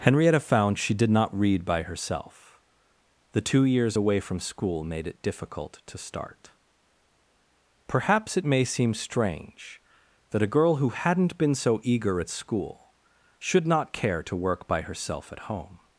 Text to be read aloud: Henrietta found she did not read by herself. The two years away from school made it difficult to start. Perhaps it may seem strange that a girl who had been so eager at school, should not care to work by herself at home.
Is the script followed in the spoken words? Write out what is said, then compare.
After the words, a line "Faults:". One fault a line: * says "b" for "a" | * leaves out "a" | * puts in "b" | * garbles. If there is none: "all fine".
Henrietta found she did not read by herself. The two years away from school made it difficult to start. Perhaps it may seem strange that a girl who hadn't been so eager at school, should not care to work by herself at home.
Faults:
* says "hadn't" for "had"